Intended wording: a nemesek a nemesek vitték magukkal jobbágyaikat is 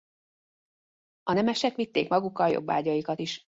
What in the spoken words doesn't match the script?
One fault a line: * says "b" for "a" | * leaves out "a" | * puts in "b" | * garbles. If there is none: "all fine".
* leaves out "a nemesek"